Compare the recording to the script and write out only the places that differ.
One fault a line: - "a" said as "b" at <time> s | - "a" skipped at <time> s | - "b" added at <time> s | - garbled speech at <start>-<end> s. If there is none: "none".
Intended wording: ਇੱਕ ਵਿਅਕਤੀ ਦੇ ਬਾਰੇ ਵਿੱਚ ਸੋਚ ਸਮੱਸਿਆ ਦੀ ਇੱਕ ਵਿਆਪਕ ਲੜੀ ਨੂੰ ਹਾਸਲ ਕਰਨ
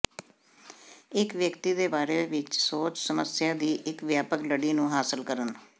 none